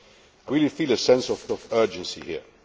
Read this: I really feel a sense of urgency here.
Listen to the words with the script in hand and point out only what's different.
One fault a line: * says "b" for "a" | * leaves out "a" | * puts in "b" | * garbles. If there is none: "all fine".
* puts in "of"